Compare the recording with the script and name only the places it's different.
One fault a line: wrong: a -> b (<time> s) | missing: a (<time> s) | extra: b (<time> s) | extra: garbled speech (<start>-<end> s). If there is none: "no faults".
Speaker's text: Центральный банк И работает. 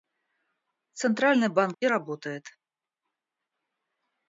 no faults